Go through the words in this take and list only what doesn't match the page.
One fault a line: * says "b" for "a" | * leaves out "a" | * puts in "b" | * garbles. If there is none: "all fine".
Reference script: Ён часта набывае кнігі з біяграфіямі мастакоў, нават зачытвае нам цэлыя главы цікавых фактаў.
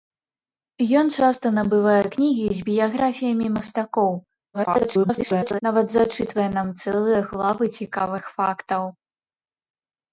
* garbles